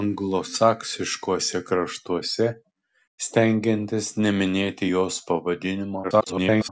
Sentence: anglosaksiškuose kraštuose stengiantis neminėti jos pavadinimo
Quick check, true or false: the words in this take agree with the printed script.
false